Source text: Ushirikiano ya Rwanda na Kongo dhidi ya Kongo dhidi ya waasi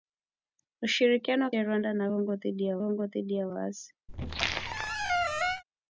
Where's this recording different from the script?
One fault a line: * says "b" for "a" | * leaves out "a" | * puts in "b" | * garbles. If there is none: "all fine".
all fine